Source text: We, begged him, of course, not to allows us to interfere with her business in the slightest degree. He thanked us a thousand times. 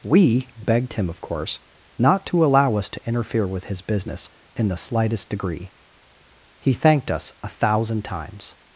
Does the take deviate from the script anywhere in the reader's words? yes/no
yes